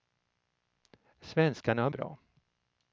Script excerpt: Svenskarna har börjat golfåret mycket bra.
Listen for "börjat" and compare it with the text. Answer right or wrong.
wrong